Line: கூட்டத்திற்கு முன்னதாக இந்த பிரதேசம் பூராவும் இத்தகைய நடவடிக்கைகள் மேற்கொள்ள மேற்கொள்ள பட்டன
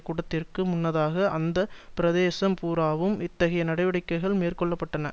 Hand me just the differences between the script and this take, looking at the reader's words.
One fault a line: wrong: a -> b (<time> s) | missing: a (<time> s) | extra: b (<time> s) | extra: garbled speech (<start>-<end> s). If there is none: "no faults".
wrong: இந்த -> அந்த (1.3 s)
missing: மேற்கொள்ள (4.7 s)